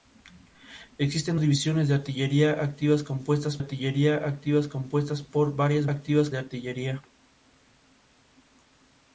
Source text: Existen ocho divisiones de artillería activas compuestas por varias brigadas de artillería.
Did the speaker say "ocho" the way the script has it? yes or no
no